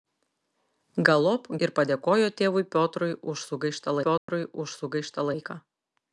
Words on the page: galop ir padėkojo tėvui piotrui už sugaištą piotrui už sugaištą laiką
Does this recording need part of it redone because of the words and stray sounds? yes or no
yes